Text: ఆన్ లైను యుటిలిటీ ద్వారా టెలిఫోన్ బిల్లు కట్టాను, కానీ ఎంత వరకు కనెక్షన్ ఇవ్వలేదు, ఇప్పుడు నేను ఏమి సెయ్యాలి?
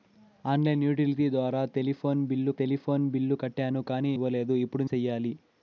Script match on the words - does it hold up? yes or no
no